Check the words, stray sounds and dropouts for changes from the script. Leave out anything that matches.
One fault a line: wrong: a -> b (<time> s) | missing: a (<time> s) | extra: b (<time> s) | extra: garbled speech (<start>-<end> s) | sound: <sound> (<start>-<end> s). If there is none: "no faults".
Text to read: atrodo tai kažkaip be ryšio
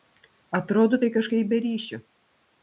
no faults